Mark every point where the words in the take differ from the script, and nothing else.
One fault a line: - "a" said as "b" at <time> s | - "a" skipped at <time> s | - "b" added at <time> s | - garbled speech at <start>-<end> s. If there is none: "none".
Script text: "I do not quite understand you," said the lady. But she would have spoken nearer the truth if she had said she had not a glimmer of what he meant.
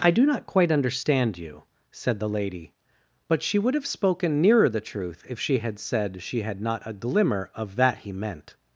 - "what" said as "that" at 7.8 s